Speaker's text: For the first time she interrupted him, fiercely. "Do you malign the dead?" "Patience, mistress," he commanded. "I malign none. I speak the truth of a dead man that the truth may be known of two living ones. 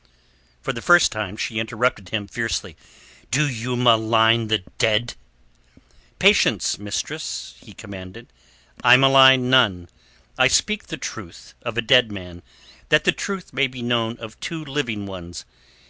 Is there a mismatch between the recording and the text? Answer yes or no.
no